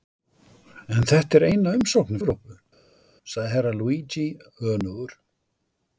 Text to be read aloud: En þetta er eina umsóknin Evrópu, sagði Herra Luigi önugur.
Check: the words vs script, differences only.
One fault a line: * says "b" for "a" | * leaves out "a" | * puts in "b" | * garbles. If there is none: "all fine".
all fine